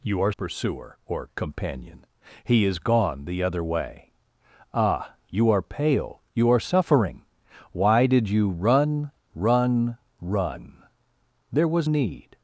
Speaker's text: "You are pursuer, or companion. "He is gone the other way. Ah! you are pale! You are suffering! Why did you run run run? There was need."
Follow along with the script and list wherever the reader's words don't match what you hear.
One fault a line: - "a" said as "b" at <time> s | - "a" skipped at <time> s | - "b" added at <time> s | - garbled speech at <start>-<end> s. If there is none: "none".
none